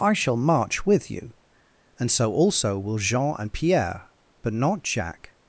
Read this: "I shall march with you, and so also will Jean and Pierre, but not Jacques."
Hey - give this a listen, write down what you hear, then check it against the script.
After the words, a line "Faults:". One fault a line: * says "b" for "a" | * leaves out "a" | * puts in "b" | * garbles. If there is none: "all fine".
"I shall march with you, and so also will Jean and Pierre, but not Jacques."
Faults:
all fine